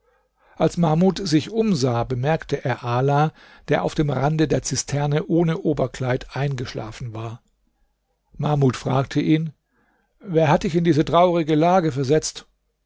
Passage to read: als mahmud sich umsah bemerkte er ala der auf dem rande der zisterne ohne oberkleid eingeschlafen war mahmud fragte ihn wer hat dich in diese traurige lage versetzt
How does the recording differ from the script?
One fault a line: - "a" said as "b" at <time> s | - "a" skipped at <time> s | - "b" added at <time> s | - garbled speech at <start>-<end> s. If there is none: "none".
none